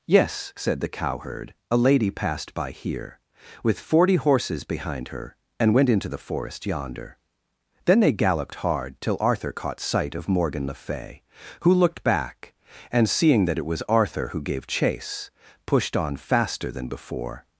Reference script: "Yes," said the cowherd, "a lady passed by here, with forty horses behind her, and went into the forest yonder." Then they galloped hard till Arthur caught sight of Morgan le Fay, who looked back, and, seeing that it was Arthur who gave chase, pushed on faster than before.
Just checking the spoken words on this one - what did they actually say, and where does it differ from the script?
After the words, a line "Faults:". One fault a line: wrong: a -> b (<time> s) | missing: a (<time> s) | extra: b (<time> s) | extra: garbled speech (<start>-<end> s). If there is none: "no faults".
"Yes," said the cowherd, "a lady passed by here, with forty horses behind her, and went into the forest yonder." Then they galloped hard till Arthur caught sight of Morgan le Fay, who looked back, and, seeing that it was Arthur who gave chase, pushed on faster than before.
Faults:
no faults